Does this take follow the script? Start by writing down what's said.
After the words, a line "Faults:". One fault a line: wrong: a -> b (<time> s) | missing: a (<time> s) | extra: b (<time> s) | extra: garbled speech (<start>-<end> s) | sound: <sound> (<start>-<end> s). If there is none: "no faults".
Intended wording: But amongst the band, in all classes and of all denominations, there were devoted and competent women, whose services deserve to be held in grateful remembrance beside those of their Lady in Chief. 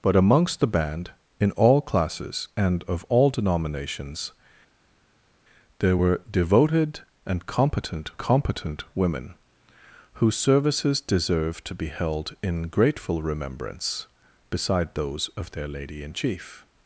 But amongst the band, in all classes and of all denominations, there were devoted and competent competent women, whose services deserve to be held in grateful remembrance beside those of their Lady in Chief.
Faults:
extra: competent (8.2 s)